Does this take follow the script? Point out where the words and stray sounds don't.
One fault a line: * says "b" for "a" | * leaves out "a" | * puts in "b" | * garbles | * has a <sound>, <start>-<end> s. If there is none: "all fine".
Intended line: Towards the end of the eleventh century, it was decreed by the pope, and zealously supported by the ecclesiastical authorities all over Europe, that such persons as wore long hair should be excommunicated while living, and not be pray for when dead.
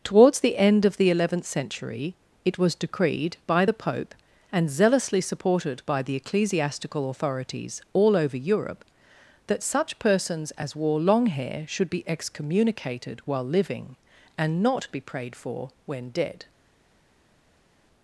* says "prayed" for "pray"